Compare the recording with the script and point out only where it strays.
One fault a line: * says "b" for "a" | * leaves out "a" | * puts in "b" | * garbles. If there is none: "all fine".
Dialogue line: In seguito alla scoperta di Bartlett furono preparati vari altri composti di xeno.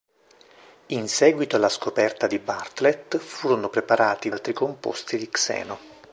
* leaves out "vari"